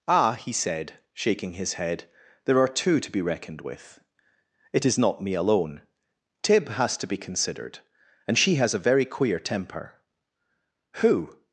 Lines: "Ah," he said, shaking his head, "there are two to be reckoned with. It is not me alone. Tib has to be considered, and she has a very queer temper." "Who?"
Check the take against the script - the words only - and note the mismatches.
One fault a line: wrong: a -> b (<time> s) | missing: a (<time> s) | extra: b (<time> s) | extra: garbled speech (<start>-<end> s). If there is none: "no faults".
no faults